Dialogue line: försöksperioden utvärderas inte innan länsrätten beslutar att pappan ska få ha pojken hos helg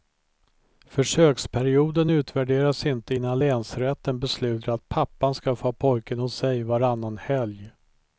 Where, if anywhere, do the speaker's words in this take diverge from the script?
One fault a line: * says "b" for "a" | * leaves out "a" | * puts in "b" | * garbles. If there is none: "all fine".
* puts in "sig varannan"